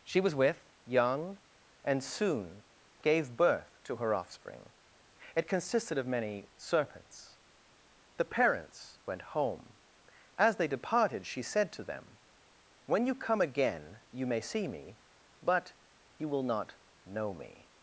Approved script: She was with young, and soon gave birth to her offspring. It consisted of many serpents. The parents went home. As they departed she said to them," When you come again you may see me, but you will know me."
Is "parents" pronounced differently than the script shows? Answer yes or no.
no